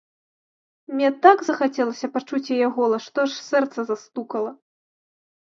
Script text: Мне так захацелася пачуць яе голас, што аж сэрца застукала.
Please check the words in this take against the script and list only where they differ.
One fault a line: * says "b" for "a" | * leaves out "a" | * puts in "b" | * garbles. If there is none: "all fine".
all fine